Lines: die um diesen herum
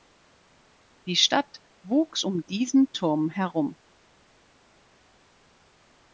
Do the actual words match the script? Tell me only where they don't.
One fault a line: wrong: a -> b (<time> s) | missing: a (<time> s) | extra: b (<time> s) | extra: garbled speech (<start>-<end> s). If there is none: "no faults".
extra: stadt wuchs (1.1 s)
extra: turm (2.9 s)